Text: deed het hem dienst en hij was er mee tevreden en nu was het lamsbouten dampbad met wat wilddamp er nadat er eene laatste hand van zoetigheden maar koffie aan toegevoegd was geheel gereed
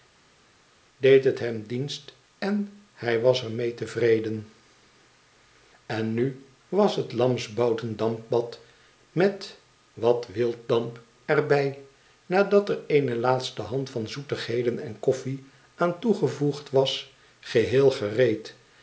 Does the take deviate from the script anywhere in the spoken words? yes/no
yes